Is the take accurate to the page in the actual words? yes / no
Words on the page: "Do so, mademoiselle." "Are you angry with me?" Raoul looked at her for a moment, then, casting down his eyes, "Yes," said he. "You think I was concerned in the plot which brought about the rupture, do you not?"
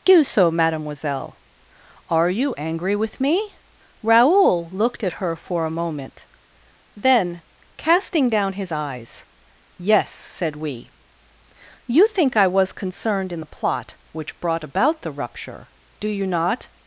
no